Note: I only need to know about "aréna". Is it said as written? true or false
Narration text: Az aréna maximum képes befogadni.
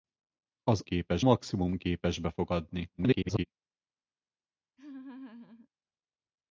false